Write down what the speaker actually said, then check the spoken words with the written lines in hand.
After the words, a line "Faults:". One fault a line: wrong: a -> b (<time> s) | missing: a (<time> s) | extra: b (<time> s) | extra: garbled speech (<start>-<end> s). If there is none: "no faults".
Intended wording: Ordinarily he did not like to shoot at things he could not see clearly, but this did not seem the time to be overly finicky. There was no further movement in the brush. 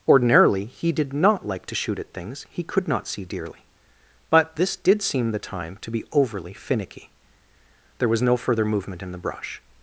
Ordinarily he did not like to shoot at things he could not see dearly, but this did seem the time to be overly finicky. There was no further movement in the brush.
Faults:
wrong: clearly -> dearly (3.2 s)
missing: not (5.0 s)